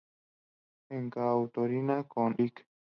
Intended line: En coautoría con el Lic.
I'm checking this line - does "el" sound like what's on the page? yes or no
no